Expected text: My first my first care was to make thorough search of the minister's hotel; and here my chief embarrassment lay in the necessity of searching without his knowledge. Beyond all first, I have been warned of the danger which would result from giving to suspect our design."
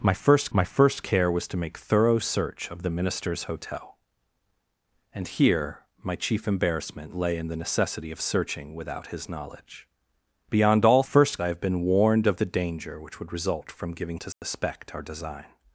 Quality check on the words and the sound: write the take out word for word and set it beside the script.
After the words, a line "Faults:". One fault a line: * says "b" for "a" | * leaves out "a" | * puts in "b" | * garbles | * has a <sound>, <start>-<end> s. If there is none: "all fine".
My first my first care was to make thorough search of the minister's hotel; and here my chief embarrassment lay in the necessity of searching without his knowledge. Beyond all first, I have been warned of the danger which would result from giving to suspect our design."
Faults:
* has a dropout, 14.3-14.4 s